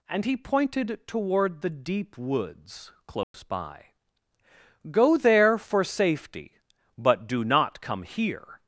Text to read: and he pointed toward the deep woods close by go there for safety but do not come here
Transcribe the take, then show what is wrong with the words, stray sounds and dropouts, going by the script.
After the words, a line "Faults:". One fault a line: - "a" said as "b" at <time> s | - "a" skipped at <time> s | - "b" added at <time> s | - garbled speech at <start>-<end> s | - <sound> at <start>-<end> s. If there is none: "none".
and he pointed toward the deep woods close by go there for safety but do not come here
Faults:
- dropout at 3.2-3.3 s